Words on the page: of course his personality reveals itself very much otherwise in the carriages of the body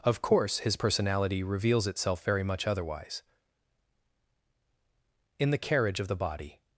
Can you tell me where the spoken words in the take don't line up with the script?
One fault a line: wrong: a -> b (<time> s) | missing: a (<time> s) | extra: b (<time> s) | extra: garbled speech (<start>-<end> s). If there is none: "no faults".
wrong: carriages -> carriage (5.6 s)